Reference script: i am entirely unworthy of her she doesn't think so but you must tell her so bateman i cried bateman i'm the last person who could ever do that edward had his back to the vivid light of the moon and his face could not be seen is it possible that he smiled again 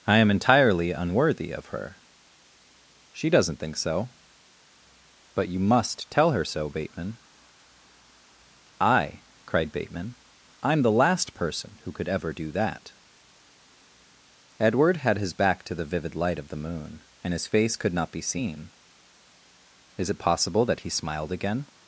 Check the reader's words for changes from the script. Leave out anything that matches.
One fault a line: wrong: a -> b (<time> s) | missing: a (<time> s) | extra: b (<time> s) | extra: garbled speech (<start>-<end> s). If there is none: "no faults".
no faults